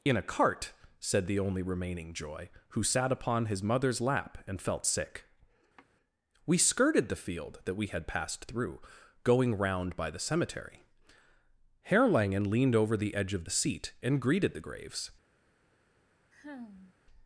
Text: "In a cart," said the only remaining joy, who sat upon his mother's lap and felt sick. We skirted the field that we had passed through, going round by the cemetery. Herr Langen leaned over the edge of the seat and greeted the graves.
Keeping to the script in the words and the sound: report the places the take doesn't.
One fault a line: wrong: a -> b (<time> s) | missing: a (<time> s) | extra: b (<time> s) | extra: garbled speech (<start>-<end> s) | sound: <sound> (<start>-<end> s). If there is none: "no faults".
sound: sigh (5.8-5.9 s)
sound: sigh (16.3-17.0 s)